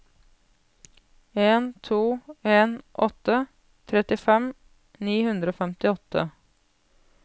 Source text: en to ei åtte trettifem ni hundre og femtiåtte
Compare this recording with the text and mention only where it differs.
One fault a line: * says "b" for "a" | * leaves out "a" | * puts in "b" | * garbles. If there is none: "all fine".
* says "en" for "ei"